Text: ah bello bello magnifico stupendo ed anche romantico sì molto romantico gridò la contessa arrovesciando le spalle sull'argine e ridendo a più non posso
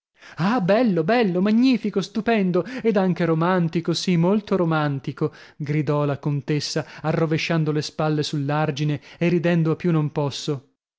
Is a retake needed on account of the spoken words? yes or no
no